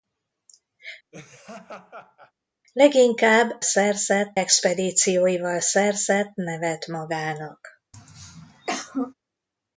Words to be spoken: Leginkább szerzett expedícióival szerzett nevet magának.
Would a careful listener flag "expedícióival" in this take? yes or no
no